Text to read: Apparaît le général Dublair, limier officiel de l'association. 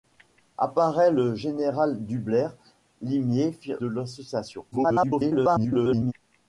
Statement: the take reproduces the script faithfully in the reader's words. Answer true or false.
false